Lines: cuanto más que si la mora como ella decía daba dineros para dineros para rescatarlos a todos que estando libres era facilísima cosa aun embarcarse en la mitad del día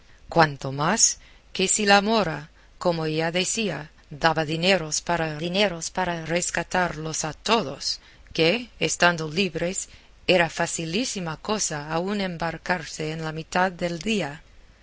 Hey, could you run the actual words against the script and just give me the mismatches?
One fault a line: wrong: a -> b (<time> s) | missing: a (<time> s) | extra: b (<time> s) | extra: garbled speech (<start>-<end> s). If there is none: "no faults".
no faults